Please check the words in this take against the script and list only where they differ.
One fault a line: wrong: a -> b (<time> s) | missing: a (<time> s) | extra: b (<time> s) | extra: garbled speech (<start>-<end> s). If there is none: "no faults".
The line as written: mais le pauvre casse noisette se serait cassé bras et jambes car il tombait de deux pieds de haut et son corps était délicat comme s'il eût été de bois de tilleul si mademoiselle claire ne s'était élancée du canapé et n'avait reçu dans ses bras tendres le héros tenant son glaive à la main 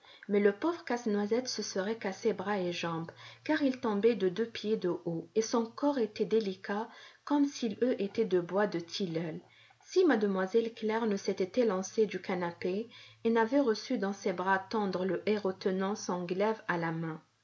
no faults